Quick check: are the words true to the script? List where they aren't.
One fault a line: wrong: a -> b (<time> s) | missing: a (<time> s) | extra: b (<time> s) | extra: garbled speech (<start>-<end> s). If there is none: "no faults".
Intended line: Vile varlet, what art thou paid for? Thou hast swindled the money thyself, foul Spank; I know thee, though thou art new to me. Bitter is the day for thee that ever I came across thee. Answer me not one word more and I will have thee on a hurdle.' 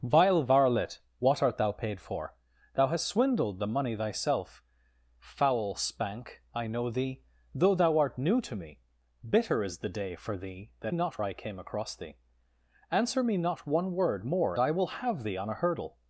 wrong: ever -> not (10.9 s)
missing: and (14.6 s)